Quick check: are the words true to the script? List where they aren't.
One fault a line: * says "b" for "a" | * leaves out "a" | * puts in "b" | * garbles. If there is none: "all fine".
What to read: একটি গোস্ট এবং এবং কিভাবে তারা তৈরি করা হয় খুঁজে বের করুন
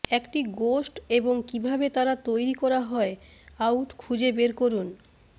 * leaves out "এবং"
* puts in "আউট"